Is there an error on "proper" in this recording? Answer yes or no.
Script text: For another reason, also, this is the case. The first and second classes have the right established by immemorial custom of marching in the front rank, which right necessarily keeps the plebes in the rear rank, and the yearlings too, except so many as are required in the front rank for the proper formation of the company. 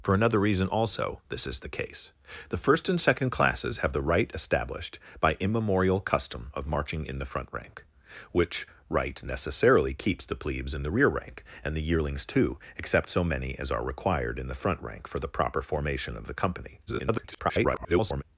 no